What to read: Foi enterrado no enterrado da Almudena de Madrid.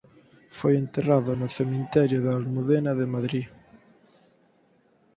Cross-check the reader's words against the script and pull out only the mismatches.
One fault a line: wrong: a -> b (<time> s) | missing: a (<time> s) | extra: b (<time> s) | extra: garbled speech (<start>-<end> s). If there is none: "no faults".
wrong: enterrado -> cemiterio (1.6 s)